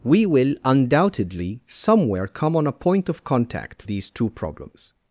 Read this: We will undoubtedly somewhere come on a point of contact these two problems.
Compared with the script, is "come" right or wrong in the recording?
right